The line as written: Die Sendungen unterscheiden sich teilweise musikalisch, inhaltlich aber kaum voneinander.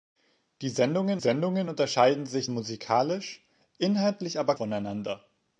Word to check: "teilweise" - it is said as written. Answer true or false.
false